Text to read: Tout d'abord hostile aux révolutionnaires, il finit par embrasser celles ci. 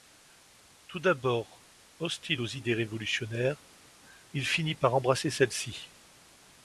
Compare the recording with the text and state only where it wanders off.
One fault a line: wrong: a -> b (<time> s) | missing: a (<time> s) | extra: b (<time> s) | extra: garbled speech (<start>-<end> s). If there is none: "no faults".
extra: idées (2.5 s)